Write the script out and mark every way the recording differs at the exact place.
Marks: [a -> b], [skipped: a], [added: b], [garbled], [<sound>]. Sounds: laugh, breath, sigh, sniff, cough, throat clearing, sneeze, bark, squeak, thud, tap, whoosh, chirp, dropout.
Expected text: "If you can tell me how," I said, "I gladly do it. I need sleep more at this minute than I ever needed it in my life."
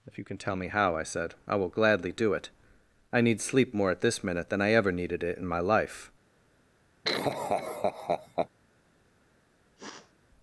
"If you can tell me how," I said, "I [added: will] gladly do it. I need sleep more at this minute than I ever needed it in my life." [laugh] [sniff]